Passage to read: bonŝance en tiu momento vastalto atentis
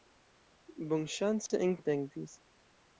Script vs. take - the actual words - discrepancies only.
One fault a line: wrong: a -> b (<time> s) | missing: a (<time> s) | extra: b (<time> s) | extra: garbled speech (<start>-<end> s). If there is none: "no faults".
missing: tiu momento vastalto (1.8 s)